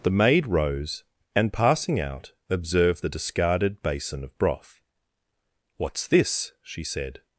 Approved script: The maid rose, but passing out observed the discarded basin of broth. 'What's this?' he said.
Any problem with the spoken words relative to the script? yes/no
yes